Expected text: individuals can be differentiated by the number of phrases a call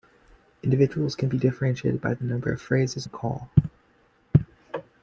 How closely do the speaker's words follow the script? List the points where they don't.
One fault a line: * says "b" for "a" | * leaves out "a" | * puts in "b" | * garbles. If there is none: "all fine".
all fine